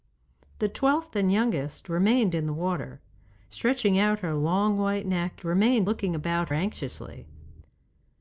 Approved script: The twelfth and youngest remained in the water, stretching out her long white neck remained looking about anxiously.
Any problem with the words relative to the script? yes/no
no